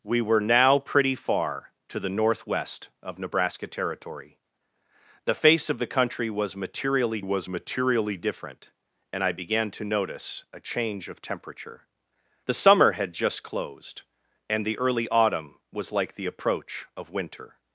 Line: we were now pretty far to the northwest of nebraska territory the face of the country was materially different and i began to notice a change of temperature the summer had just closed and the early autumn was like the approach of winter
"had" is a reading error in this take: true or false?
false